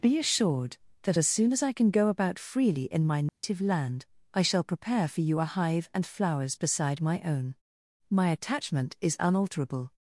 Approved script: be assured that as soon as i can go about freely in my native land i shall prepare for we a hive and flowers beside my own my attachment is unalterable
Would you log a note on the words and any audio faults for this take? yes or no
yes